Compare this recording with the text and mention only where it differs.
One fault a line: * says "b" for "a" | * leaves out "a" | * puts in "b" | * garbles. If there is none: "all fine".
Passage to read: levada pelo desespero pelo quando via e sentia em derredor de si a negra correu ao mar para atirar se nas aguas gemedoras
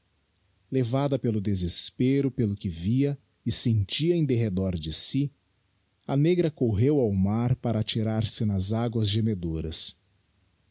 * says "que" for "quando"